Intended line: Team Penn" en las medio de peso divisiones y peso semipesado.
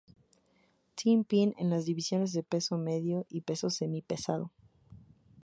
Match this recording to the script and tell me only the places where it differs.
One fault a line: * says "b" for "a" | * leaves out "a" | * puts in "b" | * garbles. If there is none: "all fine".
* says "divisiones" for "medio"
* says "medio" for "divisiones"